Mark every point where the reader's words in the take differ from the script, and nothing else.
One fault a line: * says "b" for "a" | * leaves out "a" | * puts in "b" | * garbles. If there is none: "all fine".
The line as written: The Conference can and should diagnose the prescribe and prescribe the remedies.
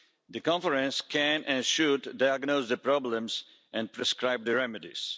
* says "problems" for "prescribe"